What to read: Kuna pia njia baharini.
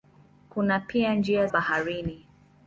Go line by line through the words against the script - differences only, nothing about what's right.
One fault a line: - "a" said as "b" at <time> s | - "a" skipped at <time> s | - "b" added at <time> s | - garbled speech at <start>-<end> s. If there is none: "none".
none